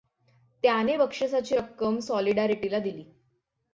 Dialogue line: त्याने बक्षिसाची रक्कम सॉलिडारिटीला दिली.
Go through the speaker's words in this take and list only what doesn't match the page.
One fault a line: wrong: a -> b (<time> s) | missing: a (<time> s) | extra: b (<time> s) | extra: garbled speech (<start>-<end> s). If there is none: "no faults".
no faults